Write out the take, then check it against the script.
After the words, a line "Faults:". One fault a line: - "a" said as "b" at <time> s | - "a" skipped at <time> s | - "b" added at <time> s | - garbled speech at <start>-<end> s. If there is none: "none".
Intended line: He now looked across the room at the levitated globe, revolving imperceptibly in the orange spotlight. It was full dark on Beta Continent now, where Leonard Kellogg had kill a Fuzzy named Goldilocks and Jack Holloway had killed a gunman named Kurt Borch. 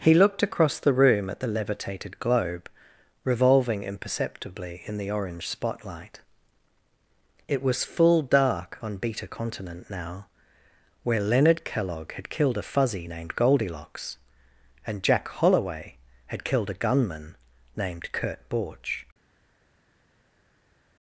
He looked across the room at the levitated globe, revolving imperceptibly in the orange spotlight. It was full dark on Beta Continent now, where Leonard Kellogg had killed a Fuzzy named Goldilocks and Jack Holloway had killed a gunman named Kurt Borch.
Faults:
- "now" skipped at 0.1 s
- "kill" said as "killed" at 12.3 s